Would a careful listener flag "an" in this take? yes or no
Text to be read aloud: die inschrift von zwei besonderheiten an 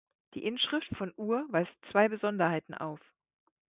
yes